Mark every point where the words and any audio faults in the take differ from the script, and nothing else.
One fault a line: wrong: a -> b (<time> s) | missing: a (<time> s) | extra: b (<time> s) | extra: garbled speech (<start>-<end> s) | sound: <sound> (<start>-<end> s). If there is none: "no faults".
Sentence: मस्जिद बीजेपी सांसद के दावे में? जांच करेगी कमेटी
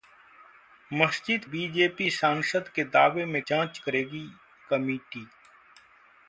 no faults